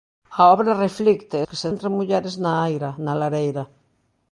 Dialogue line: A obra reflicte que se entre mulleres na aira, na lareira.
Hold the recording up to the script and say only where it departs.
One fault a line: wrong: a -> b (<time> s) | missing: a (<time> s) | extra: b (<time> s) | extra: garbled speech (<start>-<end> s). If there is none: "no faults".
no faults